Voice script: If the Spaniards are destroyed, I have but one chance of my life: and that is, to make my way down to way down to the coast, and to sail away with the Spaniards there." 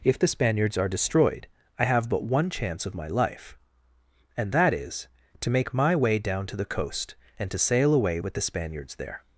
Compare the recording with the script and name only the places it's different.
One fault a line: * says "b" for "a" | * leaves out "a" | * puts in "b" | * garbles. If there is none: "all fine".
* leaves out "way down to"